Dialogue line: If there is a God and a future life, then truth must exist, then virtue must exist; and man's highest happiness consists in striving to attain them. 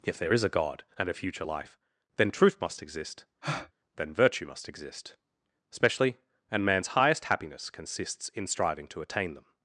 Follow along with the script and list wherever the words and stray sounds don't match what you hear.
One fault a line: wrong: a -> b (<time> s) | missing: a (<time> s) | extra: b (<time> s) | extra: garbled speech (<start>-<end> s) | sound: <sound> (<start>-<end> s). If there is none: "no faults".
sound: breath (3.4-3.7 s)
extra: especially (5.7 s)